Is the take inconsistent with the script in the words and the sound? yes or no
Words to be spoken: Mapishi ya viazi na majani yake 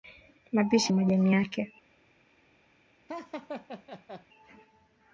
yes